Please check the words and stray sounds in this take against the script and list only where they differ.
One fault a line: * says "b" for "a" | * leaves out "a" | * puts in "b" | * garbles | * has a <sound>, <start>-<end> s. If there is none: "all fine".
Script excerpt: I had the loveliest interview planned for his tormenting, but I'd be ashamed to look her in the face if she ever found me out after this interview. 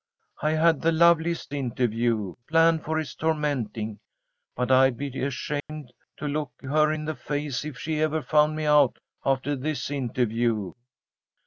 * has a dropout, 5.6-5.7 s